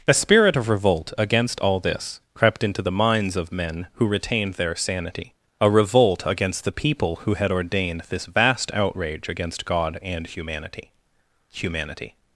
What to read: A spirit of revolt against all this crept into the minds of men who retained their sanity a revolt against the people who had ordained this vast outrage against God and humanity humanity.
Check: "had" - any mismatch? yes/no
no